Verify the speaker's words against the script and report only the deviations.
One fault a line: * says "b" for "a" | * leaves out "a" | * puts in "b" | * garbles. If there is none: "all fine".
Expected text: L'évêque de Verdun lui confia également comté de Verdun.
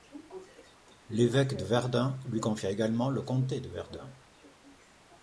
* puts in "le"